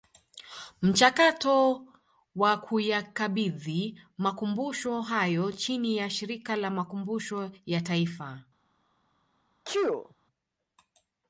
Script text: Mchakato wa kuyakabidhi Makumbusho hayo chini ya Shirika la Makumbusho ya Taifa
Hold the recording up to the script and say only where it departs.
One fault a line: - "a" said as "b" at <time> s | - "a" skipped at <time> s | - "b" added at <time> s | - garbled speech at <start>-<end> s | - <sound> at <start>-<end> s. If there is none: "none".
- sneeze at 9.6-10.1 s